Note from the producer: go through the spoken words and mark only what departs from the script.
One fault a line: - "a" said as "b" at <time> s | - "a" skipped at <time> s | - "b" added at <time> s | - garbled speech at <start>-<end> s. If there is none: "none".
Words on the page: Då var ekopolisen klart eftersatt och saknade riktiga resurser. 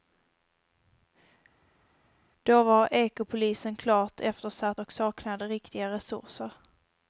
none